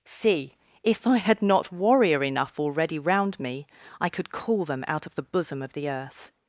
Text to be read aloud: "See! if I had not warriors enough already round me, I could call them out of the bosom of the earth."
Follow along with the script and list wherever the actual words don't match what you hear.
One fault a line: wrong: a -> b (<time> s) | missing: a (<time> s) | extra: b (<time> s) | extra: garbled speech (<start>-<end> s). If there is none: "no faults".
wrong: warriors -> warrior (1.7 s)